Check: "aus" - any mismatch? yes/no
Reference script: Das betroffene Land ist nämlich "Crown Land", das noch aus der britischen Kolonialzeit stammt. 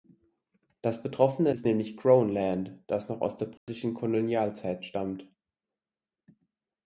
no